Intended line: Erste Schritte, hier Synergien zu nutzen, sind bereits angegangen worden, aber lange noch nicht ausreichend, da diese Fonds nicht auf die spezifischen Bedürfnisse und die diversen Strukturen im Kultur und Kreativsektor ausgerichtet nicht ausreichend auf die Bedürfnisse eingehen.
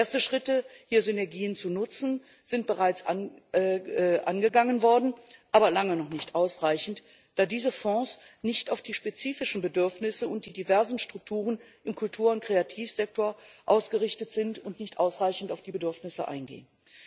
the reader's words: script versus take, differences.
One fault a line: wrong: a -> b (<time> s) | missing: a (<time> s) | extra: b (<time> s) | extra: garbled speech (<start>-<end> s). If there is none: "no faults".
extra: sind und (14.3 s)